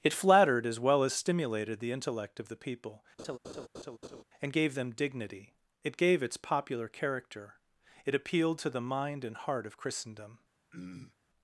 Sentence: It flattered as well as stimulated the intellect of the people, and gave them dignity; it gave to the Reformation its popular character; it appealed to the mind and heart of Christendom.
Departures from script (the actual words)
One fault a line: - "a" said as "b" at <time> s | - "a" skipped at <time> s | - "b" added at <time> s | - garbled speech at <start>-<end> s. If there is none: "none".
- "to the Reformation" skipped at 6.2 s